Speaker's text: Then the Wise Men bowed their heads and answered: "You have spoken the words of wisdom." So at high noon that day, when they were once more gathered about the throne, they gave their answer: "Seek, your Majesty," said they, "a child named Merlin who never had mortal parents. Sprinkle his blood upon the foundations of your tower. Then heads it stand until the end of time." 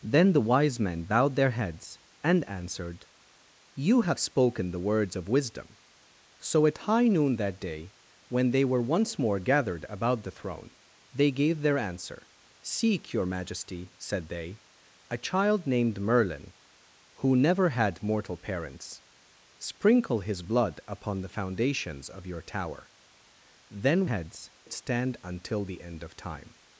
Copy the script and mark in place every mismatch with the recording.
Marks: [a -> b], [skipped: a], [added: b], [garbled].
Then the Wise Men bowed their heads and answered: "You have spoken the words of wisdom." So at high noon that day, when they were once more gathered about the throne, they gave their answer: "Seek, your Majesty," said they, "a child named Merlin who never had mortal parents. Sprinkle his blood upon the foundations of your tower. Then heads it stand until the end of time."